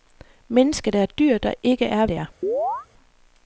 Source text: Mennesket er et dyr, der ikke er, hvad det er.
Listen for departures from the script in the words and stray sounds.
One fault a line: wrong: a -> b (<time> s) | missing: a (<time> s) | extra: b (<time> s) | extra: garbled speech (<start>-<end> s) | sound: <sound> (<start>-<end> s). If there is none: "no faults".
missing: hvad (2.0 s)
sound: chirp (2.4-2.9 s)